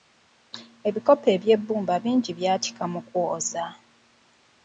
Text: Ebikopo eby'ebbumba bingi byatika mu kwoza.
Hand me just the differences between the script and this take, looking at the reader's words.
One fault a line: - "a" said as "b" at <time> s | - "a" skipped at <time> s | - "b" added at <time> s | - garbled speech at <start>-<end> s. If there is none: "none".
none